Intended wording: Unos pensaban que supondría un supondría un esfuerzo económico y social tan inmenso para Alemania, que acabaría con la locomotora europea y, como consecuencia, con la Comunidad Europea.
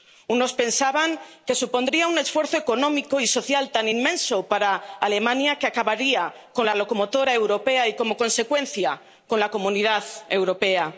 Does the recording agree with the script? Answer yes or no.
no